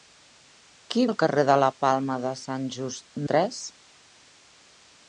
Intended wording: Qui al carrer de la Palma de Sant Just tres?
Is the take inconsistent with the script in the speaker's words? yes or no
no